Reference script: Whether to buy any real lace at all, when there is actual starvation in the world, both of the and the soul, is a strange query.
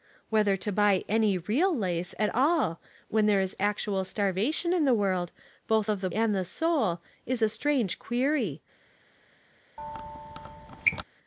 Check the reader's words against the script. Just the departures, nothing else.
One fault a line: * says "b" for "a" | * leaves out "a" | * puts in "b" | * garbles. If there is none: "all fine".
all fine